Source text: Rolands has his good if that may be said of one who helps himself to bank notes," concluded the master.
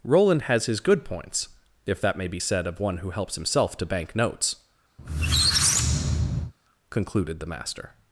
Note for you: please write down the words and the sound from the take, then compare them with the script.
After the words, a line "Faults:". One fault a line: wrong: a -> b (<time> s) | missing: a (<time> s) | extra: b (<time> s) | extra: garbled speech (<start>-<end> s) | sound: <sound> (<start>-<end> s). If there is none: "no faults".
Roland has his good points if that may be said of one who helps himself to bank notes," concluded the master.
Faults:
wrong: Rolands -> Roland (0.0 s)
extra: points (1.1 s)
sound: squeak (5.0-6.5 s)